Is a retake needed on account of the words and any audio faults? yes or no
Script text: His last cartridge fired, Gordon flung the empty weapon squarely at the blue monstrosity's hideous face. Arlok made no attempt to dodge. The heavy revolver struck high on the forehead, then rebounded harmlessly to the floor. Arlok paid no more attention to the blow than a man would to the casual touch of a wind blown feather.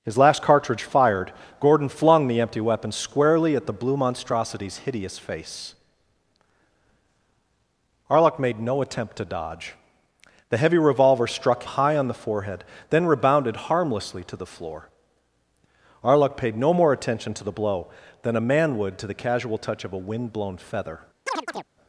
yes